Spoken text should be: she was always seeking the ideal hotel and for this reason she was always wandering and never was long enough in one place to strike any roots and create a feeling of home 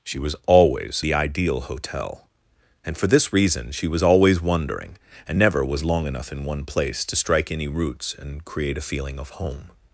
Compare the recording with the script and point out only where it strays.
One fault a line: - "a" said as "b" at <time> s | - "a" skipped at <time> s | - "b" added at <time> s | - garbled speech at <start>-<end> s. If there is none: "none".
- "seeking" skipped at 1.0 s